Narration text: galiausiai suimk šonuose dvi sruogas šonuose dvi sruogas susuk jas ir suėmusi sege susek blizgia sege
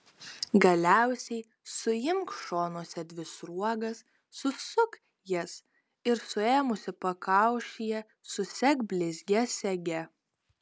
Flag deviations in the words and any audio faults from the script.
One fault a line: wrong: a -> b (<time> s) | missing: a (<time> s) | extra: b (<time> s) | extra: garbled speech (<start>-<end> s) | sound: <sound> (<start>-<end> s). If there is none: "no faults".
missing: šonuose dvi sruogas (4.0 s)
wrong: sege -> pakaušyje (7.1 s)